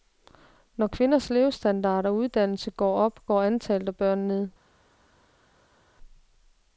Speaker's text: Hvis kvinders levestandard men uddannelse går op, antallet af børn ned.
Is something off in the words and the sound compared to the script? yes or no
yes